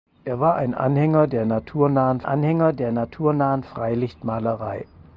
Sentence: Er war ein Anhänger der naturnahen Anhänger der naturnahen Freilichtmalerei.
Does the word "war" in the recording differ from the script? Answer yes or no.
no